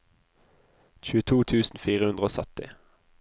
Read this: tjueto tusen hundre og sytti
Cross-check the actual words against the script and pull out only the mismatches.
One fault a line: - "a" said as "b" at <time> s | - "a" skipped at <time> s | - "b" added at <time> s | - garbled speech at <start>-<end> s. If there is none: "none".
- "fire" added at 1.9 s